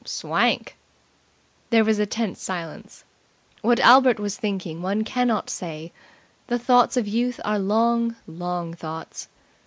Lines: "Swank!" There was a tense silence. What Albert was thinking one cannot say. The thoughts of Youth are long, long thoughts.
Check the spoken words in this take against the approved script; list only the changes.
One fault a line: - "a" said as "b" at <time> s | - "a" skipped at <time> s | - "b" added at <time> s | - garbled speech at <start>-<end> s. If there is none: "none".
none